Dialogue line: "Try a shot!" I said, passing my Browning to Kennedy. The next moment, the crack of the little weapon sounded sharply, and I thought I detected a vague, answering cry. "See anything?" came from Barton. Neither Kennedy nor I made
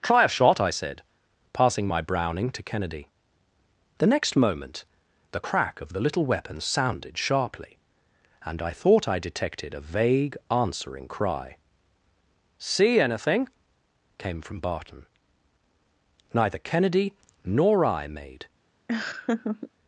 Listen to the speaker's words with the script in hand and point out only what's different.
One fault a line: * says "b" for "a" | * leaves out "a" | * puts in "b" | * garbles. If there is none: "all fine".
all fine